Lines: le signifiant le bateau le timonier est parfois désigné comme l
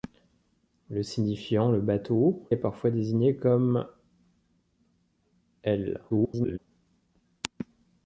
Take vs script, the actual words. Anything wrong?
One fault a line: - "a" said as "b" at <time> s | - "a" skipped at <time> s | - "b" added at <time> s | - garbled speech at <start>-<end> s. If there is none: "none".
- "le timonier" skipped at 2.5 s
- garbled speech at 6.1-6.6 s